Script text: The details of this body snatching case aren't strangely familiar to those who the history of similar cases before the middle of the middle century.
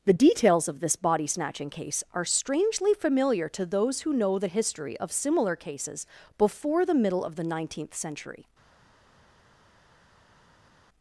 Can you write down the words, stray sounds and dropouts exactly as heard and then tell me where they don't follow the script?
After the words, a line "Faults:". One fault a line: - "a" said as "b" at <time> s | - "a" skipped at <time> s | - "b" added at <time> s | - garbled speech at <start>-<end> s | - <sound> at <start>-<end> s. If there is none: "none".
The details of this body snatching case are strangely familiar to those who know the history of similar cases before the middle of the nineteenth century.
Faults:
- "aren't" said as "are" at 2.1 s
- "know" added at 4.1 s
- "middle" said as "nineteenth" at 7.4 s